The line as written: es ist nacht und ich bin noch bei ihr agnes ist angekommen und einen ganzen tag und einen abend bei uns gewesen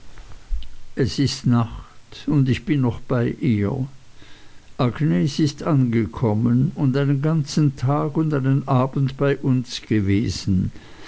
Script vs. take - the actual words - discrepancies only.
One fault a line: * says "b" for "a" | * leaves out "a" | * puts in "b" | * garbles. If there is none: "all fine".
all fine